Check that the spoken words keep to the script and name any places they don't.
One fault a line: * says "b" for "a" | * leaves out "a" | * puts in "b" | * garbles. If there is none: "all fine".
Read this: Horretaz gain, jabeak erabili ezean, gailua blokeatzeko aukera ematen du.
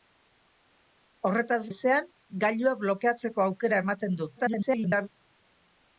* leaves out "gain jabeak erabili"
* garbles